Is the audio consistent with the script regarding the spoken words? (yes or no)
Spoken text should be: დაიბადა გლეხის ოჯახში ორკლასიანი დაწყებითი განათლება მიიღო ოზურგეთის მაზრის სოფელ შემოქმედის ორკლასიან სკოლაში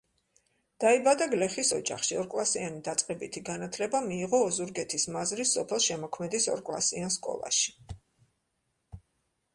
yes